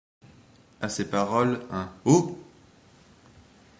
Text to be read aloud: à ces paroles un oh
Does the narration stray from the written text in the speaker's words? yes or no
no